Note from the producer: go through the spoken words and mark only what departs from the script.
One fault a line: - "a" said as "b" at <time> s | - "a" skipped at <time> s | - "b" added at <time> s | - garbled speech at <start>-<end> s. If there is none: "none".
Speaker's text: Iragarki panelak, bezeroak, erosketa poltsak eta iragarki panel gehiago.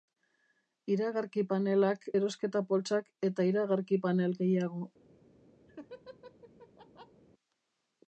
- "bezeroak" skipped at 2.1 s